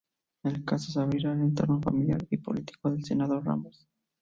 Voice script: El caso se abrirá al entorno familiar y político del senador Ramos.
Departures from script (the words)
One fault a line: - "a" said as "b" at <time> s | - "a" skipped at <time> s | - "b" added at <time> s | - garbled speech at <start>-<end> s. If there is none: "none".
none